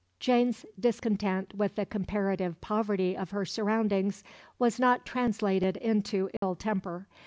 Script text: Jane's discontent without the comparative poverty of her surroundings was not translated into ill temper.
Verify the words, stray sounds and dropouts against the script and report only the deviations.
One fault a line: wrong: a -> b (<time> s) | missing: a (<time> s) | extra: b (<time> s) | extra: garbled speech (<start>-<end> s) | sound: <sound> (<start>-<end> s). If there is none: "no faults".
wrong: without -> with (1.5 s)
sound: dropout (6.4-6.4 s)